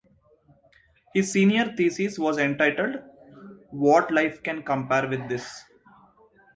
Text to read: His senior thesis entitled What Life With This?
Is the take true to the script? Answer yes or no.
no